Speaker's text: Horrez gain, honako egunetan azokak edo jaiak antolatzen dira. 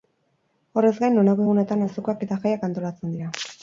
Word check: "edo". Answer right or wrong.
wrong